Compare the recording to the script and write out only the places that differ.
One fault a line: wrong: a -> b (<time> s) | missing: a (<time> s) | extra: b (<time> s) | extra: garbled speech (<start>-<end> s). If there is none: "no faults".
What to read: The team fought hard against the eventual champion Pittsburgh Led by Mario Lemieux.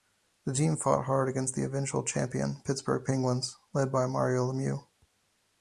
extra: Penguins (3.0 s)